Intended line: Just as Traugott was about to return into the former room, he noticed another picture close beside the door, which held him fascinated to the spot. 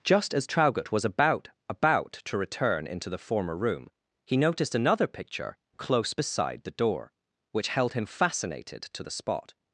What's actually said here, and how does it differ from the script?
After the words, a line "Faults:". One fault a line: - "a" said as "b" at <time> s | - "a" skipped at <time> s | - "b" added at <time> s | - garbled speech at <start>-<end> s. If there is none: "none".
Just as Traugott was about about to return into the former room, he noticed another picture close beside the door, which held him fascinated to the spot.
Faults:
- "about" added at 1.7 s